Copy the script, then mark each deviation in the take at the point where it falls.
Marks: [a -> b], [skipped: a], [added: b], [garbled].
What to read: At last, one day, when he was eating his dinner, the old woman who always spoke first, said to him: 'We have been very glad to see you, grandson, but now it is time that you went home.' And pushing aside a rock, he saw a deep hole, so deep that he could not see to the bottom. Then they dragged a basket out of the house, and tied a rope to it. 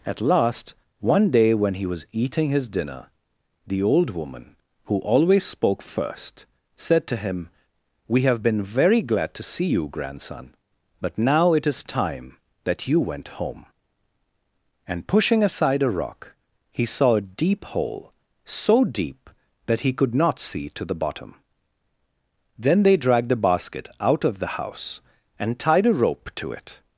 At last, one day, when he was eating his dinner, the old woman who always spoke first, said to him: 'We have been very glad to see you, grandson, but now it is time that you went home.' And pushing aside a rock, he saw a deep hole, so deep that he could not see to the bottom. Then they dragged [a -> the] basket out of the house, and tied a rope to it.